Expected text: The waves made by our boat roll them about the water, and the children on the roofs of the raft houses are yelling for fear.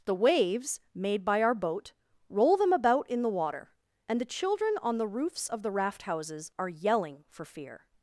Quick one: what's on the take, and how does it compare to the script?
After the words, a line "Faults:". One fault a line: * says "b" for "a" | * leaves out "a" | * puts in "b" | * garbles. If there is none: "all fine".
The waves made by our boat roll them about in the water, and the children on the roofs of the raft houses are yelling for fear.
Faults:
* puts in "in"